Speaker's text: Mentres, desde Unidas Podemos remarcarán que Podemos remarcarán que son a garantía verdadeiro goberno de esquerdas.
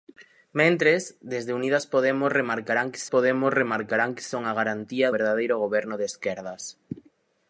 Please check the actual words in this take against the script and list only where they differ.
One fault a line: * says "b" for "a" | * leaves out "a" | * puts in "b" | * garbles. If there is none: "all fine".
all fine